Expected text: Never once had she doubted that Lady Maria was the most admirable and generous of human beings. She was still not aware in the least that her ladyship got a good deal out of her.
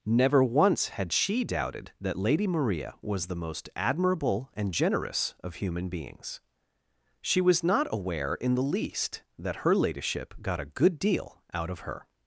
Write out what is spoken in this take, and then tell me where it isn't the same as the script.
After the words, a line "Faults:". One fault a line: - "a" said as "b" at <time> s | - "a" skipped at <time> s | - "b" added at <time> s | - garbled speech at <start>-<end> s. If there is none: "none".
Never once had she doubted that Lady Maria was the most admirable and generous of human beings. She was not aware in the least that her ladyship got a good deal out of her.
Faults:
- "still" skipped at 7.6 s